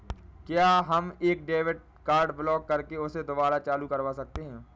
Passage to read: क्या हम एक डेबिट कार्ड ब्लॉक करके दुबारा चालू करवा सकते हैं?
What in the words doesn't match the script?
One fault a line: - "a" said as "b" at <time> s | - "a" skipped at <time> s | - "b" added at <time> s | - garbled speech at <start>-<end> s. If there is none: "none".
- "उसे" added at 3.0 s